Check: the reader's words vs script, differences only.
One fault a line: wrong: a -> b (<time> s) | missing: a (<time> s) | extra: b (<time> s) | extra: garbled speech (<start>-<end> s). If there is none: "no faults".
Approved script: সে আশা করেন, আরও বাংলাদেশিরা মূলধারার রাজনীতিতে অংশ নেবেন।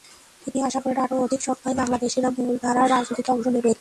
wrong: সে -> তিনি (0.5 s)
extra: অধিক সংখ্যায় (1.2 s)